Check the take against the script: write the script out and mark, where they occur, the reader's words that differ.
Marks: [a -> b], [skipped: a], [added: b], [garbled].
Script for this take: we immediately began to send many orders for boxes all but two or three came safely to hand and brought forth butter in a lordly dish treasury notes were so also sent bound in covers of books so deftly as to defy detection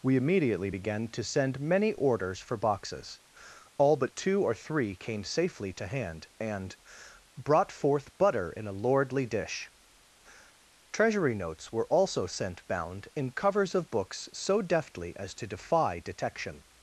we immediately began to send many orders for boxes all but two or three came safely to hand and brought forth butter in a lordly dish treasury notes were [skipped: so] also sent bound in covers of books so deftly as to defy detection